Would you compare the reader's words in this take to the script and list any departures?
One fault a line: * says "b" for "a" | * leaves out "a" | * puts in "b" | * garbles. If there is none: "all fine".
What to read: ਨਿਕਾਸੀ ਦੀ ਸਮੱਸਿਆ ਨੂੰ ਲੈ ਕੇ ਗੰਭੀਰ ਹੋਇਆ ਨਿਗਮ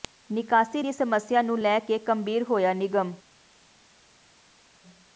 all fine